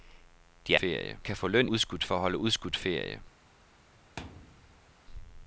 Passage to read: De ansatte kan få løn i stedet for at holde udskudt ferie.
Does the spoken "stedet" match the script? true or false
false